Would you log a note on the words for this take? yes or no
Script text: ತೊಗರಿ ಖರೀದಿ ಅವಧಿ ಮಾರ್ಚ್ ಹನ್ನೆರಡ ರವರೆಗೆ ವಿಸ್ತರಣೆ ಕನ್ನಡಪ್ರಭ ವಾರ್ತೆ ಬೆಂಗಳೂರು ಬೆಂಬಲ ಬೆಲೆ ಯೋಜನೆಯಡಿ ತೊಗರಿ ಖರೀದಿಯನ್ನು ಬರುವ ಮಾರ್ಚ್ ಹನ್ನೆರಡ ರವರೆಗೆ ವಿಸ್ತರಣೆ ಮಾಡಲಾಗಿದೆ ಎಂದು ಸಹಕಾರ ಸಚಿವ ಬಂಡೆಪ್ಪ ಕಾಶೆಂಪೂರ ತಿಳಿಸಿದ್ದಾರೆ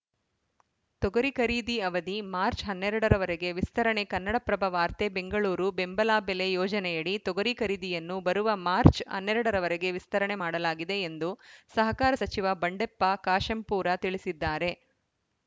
no